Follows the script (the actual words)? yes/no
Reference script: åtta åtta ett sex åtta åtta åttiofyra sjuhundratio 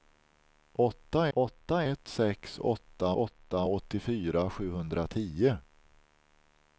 yes